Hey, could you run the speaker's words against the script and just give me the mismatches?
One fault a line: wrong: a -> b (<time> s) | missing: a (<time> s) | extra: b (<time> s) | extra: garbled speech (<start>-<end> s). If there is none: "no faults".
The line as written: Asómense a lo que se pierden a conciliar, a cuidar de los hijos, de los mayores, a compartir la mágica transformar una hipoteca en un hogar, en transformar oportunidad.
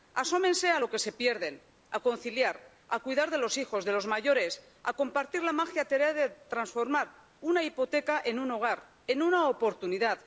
extra: tarea de (5.8 s)
wrong: transformar -> una (9.2 s)